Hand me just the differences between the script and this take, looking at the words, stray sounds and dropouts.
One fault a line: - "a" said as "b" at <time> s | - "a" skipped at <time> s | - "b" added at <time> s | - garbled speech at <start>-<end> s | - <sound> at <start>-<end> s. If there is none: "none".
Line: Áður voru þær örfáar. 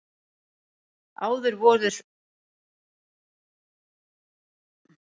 none